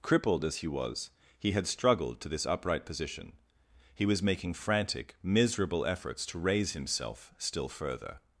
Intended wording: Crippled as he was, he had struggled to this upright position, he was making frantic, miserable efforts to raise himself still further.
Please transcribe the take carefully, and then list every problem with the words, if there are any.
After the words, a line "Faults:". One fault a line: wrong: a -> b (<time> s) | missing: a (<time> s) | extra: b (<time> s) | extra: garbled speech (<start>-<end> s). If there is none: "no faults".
Crippled as he was, he had struggled to this upright position, he was making frantic, miserable efforts to raise himself still further.
Faults:
no faults